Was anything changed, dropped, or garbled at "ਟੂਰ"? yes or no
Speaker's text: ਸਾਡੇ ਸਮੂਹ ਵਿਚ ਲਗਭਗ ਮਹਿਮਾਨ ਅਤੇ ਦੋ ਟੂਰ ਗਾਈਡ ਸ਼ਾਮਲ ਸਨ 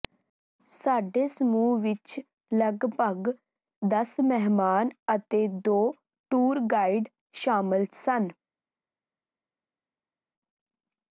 no